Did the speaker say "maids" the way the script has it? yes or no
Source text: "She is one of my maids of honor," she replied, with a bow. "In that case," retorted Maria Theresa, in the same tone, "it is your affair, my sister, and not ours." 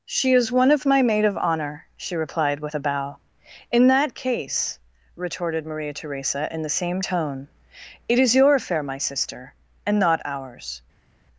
no